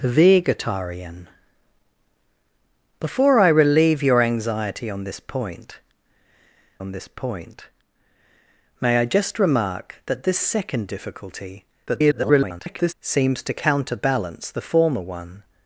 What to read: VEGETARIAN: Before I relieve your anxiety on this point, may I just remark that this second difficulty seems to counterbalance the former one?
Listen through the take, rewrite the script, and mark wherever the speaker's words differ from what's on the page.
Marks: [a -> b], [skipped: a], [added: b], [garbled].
VEGETARIAN: Before I relieve your anxiety on this point, [added: on this point] may I just remark that this second difficulty [garbled] seems to counterbalance the former one?